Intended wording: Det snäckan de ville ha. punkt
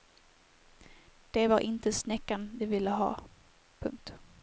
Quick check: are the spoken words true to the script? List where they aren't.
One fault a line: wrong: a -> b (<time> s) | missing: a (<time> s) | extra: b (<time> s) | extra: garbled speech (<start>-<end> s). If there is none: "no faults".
extra: var inte (1.5 s)